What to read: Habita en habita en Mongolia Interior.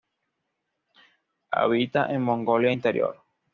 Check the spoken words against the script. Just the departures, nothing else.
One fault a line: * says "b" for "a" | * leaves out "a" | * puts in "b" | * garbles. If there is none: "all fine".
* leaves out "habita en"